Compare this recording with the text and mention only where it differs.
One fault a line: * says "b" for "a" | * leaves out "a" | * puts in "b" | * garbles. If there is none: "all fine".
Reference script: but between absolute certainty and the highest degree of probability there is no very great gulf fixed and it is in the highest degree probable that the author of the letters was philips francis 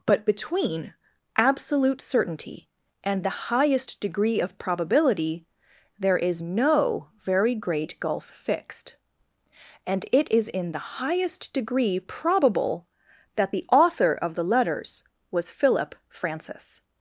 * says "philip" for "philips"